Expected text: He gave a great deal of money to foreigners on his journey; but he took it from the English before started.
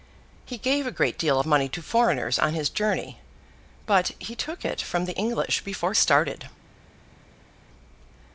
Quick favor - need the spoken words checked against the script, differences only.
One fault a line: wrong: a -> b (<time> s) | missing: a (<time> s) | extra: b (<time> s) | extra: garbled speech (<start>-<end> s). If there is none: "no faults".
no faults